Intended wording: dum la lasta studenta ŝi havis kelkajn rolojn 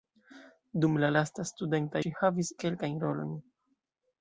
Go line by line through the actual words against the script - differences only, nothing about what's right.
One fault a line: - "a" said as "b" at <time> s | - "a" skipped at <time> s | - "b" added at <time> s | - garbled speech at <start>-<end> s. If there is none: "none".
none